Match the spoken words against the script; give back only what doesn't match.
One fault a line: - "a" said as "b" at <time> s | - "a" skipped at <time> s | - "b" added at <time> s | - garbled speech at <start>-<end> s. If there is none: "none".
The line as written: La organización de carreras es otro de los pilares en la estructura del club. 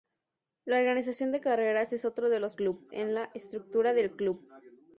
- "pilares" said as "club" at 2.6 s